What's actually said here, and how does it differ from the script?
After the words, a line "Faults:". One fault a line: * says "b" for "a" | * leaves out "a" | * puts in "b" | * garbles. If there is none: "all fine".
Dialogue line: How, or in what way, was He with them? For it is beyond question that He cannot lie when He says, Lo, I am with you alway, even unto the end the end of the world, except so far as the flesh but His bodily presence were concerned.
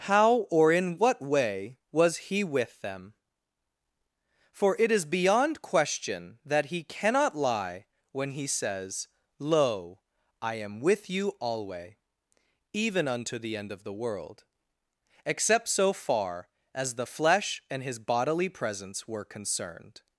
How, or in what way, was He with them? For it is beyond question that He cannot lie when He says, Lo, I am with you alway, even unto the end of the world, except so far as the flesh and His bodily presence were concerned.
Faults:
* leaves out "the end"
* says "and" for "but"